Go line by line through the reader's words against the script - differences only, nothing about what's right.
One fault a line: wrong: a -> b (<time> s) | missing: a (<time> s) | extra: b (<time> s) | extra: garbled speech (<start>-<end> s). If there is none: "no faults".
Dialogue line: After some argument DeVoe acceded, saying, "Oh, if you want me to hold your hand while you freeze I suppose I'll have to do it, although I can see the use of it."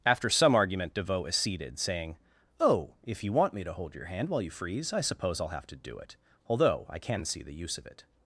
no faults